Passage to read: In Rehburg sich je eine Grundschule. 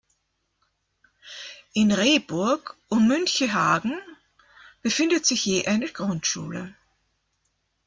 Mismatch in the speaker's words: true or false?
true